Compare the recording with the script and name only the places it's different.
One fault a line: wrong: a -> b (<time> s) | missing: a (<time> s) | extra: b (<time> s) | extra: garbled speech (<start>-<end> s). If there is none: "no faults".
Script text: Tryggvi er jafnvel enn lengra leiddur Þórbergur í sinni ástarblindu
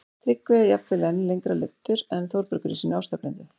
extra: en (2.2 s)